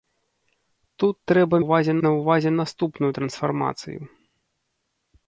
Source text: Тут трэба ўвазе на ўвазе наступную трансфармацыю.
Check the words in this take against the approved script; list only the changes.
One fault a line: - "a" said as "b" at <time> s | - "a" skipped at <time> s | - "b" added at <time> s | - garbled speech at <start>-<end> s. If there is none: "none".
none